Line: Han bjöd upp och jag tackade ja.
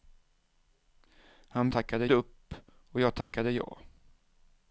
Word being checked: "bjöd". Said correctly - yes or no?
no